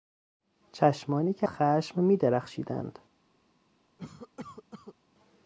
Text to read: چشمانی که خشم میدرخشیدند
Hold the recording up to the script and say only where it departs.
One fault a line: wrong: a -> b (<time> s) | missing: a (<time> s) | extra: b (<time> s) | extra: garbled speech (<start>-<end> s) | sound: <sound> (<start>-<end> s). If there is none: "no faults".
sound: cough (4.0-4.9 s)